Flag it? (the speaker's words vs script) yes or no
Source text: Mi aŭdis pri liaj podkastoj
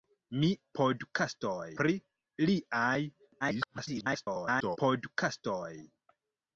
yes